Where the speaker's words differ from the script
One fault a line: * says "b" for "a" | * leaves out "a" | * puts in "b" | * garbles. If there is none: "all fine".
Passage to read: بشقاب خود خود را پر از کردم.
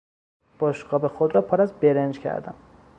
* leaves out "خود"
* puts in "برنج"